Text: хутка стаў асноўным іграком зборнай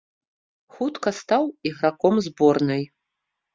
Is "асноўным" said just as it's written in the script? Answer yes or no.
no